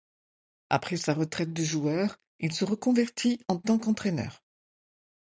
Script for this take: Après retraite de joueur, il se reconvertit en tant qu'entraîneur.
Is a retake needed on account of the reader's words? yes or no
yes